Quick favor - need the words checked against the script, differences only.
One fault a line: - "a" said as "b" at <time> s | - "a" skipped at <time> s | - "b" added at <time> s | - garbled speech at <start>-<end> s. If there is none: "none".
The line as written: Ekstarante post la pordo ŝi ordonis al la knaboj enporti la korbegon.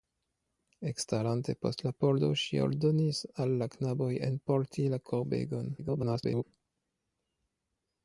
- garbled speech at 5.8-6.4 s